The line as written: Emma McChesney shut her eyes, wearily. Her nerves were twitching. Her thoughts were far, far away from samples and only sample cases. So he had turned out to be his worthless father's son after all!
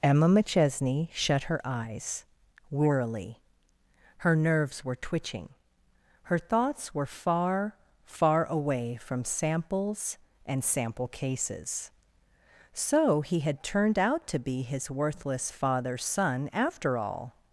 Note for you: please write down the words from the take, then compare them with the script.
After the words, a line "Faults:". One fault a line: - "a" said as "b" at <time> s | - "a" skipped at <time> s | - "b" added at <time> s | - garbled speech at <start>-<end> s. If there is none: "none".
Emma McChesney shut her eyes, wearily. Her nerves were twitching. Her thoughts were far, far away from samples and sample cases. So he had turned out to be his worthless father's son after all!
Faults:
- "only" skipped at 10.6 s